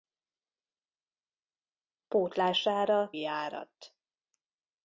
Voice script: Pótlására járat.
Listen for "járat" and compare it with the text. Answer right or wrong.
right